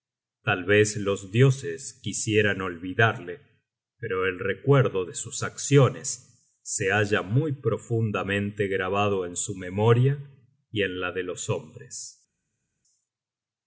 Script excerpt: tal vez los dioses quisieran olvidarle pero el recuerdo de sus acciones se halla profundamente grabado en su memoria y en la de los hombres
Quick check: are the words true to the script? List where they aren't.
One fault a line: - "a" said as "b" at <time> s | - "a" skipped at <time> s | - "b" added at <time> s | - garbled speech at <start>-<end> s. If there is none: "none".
- "muy" added at 7.2 s